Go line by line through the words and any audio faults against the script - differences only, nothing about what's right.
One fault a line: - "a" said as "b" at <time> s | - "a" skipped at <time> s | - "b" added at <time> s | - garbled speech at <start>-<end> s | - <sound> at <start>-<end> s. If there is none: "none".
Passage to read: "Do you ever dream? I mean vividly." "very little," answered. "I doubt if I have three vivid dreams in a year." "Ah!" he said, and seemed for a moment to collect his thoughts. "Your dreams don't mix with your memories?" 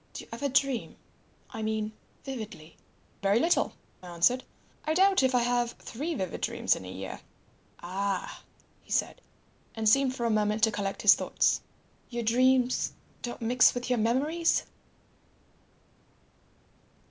none